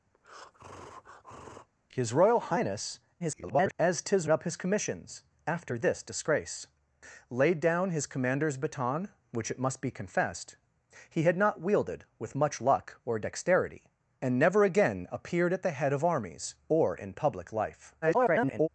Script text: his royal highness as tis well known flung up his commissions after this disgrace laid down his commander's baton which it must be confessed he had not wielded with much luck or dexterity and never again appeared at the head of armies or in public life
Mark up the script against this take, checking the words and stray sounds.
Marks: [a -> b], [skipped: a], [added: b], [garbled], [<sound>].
[breath] his royal highness [garbled] as tis [skipped: well known flung] up his commissions after this disgrace laid down his commander's baton which it must be confessed he had not wielded with much luck or dexterity and never again appeared at the head of armies or in public life [garbled]